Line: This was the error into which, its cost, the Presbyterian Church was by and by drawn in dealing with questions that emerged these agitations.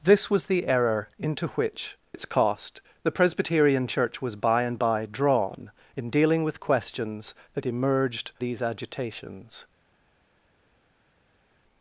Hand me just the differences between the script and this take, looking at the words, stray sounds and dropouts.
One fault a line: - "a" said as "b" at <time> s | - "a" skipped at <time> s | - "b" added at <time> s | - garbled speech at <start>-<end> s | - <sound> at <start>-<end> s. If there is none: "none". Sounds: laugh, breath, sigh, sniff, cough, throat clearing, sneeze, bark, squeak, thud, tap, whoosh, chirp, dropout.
none